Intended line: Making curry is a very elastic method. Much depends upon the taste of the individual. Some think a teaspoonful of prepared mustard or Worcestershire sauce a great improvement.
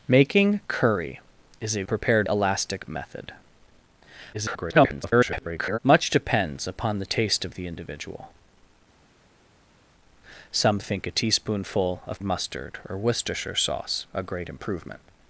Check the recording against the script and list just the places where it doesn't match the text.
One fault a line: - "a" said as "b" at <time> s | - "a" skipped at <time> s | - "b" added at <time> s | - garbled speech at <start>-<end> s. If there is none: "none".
- "very" said as "prepared" at 1.9 s
- garbled speech at 4.3-5.8 s
- "prepared" skipped at 12.2 s